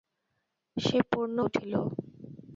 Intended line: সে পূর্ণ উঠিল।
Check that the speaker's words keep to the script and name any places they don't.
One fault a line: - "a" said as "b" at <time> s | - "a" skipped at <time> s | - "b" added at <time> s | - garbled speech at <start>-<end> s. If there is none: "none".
none